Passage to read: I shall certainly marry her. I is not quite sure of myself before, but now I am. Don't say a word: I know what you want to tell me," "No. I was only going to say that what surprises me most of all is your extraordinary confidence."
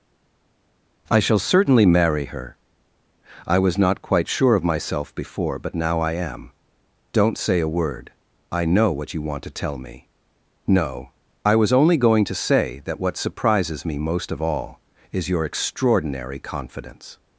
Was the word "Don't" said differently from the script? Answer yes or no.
no